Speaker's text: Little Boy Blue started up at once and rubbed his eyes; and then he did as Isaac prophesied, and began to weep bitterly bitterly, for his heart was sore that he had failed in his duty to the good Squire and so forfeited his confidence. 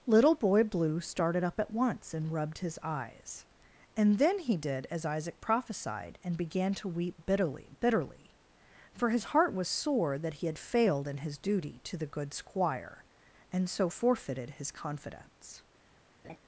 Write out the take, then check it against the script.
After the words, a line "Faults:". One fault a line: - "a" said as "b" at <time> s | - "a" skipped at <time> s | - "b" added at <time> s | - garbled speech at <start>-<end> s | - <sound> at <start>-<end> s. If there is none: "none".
Little Boy Blue started up at once and rubbed his eyes; and then he did as Isaac prophesied, and began to weep bitterly bitterly, for his heart was sore that he had failed in his duty to the good Squire and so forfeited his confidence.
Faults:
- laugh at 16.2-16.4 s